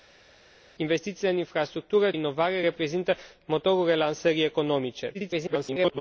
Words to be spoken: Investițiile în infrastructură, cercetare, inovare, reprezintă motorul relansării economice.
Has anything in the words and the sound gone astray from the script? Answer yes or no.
yes